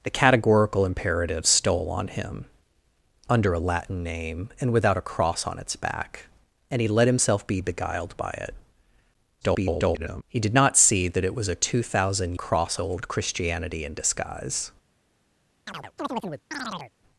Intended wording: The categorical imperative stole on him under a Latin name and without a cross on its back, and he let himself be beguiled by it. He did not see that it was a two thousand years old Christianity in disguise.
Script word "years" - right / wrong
wrong